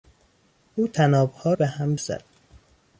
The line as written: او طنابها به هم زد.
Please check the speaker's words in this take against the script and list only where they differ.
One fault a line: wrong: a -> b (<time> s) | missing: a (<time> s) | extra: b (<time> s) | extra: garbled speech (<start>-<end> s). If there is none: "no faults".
no faults